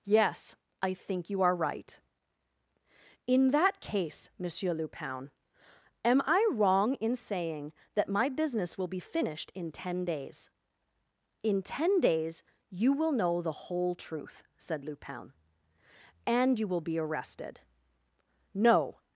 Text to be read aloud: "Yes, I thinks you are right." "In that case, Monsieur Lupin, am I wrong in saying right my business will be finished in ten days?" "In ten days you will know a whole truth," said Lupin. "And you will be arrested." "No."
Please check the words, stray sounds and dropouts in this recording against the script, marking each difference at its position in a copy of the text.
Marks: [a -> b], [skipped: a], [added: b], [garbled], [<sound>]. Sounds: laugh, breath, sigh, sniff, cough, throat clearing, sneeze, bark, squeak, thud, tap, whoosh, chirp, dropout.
"Yes, I [thinks -> think] you are right." "In that case, Monsieur Lupin, am I wrong in saying [right -> that] my business will be finished in ten days?" "In ten days you will know [a -> the] whole truth," said Lupin. "And you will be arrested." "No."